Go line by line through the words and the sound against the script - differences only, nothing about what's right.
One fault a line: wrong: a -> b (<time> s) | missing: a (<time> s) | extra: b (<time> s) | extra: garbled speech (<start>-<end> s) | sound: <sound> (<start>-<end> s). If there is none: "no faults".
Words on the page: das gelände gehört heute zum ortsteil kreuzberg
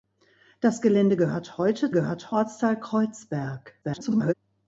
wrong: zum -> gehört (1.9 s)
extra: garbled speech (3.8-4.3 s)